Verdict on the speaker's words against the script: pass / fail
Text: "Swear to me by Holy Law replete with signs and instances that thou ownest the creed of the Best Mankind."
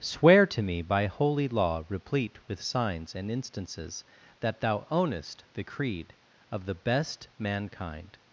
pass